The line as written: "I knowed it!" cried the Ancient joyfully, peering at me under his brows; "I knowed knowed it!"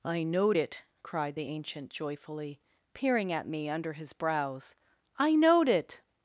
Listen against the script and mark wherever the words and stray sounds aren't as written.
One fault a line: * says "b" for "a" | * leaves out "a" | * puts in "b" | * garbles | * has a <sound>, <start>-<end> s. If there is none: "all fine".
* leaves out "knowed"